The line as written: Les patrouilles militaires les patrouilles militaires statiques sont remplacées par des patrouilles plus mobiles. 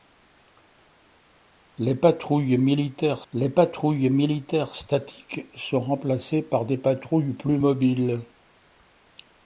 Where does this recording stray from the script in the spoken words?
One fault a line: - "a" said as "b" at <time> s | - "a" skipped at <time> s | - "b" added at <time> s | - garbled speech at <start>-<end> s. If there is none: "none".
none